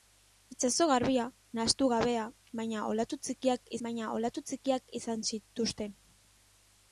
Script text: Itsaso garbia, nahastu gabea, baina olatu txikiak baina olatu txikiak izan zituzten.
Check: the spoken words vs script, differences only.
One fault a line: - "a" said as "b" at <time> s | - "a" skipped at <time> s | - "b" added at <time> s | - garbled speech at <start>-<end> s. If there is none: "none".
none